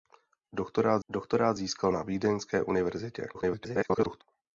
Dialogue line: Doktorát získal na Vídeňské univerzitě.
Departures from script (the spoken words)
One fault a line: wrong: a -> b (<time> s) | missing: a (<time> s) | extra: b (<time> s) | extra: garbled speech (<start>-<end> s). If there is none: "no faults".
extra: doktorát (1.1 s)
extra: garbled speech (3.3-4.2 s)